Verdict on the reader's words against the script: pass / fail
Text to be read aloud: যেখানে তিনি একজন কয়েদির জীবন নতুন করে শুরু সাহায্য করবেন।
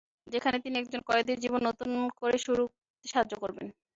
pass